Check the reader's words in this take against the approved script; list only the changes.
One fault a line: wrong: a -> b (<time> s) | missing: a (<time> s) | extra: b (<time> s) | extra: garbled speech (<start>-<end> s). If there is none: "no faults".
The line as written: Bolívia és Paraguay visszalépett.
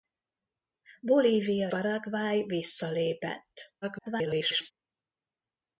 missing: és (1.7 s)
extra: garbled speech (3.8-4.7 s)